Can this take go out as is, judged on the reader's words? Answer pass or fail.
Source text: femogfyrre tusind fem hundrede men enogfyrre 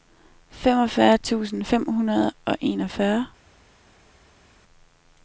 fail